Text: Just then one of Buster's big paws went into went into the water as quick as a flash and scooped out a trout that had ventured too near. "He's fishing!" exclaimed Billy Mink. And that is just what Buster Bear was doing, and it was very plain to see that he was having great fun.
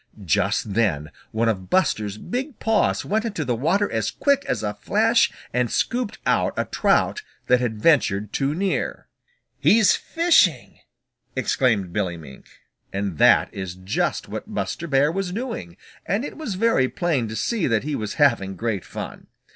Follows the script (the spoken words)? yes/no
no